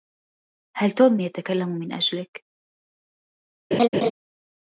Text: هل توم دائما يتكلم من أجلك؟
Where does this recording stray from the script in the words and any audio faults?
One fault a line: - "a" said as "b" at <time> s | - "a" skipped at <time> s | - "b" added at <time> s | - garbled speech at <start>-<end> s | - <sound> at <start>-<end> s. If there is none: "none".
- "دائما" skipped at 1.2 s
- laugh at 3.7-4.1 s